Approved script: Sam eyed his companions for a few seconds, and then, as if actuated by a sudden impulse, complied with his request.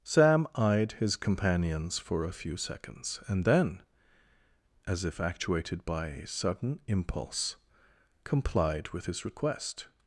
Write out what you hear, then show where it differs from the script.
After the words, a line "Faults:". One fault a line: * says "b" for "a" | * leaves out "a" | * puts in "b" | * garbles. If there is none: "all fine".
Sam eyed his companions for a few seconds, and then, as if actuated by a sudden impulse, complied with his request.
Faults:
all fine